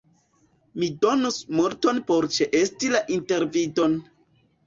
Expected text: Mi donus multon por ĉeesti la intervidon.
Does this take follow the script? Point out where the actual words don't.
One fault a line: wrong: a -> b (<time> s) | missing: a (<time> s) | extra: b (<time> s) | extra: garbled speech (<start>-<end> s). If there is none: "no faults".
no faults